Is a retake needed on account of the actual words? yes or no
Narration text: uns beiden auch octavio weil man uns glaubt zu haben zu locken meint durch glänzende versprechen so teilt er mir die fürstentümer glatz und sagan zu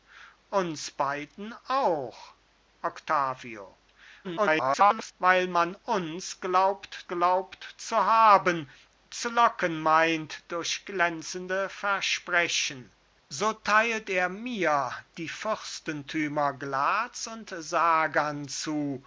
yes